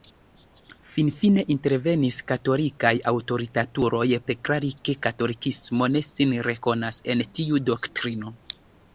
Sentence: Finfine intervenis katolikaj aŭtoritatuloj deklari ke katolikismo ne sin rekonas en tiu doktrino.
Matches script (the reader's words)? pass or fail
pass